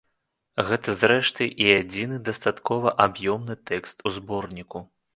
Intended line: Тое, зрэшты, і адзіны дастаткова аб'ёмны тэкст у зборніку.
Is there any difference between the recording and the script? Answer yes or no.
yes